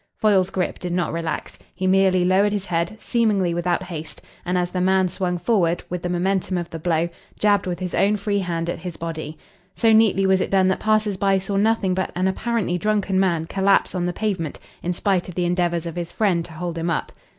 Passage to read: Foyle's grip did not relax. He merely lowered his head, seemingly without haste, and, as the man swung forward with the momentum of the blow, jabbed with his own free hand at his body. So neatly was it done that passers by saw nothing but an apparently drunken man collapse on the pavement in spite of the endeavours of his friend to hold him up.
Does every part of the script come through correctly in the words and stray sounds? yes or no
yes